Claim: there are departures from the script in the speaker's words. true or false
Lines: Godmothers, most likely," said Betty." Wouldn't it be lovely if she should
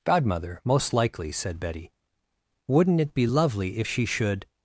true